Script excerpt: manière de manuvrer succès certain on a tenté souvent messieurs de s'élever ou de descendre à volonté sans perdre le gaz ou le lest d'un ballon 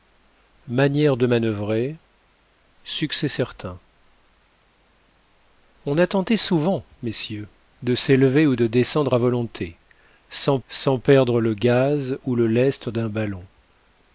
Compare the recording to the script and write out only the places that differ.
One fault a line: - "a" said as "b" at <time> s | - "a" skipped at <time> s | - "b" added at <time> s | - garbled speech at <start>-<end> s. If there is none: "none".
- "sans" added at 10.7 s